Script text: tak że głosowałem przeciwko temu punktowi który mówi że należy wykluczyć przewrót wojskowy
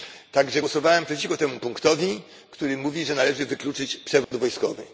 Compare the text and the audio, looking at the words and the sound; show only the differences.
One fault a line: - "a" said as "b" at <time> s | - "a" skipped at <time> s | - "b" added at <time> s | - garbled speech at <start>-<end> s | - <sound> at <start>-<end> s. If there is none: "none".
- dropout at 4.2-4.3 s